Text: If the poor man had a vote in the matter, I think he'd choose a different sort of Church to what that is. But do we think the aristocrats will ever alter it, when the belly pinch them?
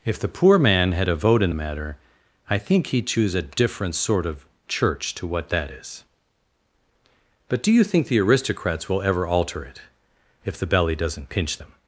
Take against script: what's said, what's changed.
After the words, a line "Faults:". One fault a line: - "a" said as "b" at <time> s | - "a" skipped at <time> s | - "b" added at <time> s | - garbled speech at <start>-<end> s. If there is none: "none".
If the poor man had a vote in the matter, I think he'd choose a different sort of Church to what that is. But do you think the aristocrats will ever alter it, if the belly doesn't pinch them?
Faults:
- "we" said as "you" at 7.7 s
- "when" said as "if" at 10.4 s
- "doesn't" added at 11.0 s